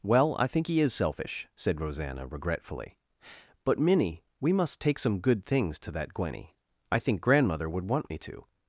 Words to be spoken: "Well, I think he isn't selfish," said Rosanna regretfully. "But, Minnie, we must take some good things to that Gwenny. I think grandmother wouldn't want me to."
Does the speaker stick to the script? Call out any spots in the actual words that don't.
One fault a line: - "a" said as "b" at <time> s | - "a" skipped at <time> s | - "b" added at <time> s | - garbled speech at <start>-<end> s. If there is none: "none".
- "isn't" said as "is" at 0.8 s
- "wouldn't" said as "would" at 7.7 s